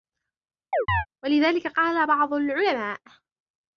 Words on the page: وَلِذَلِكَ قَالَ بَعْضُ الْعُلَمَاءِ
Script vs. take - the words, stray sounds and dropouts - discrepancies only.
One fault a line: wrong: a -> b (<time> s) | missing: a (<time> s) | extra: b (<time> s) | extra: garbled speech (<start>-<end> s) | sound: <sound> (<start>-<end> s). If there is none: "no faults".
sound: chirp (0.7-1.1 s)